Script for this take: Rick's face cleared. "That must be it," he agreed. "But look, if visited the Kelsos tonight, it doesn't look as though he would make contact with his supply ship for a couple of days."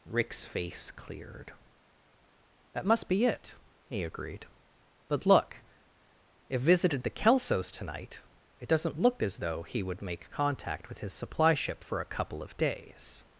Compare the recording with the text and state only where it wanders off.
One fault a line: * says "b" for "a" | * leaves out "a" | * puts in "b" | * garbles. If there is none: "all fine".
all fine